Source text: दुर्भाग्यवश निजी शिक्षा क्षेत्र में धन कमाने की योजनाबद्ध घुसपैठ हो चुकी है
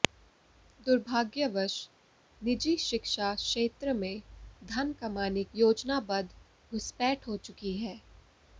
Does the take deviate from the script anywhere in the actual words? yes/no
yes